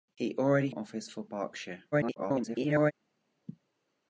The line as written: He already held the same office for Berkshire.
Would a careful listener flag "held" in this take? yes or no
yes